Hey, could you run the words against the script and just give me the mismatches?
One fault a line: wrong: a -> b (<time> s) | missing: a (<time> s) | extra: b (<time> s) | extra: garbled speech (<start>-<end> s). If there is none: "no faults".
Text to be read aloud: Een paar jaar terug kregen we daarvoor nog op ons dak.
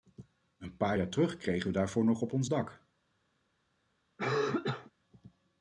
no faults